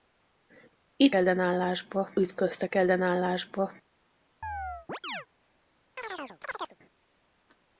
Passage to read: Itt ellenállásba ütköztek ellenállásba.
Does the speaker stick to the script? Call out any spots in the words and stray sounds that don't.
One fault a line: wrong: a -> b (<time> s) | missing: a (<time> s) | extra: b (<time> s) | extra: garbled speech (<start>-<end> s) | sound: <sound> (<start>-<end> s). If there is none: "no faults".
sound: chirp (4.4-5.3 s)
sound: chirp (6.0-6.8 s)